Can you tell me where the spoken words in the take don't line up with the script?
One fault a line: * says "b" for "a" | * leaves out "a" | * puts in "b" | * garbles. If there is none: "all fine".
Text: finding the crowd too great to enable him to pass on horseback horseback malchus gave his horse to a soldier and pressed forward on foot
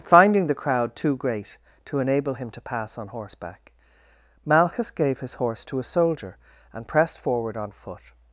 * leaves out "horseback"